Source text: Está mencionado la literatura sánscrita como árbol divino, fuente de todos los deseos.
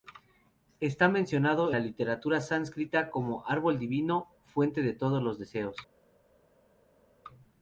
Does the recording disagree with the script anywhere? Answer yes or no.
no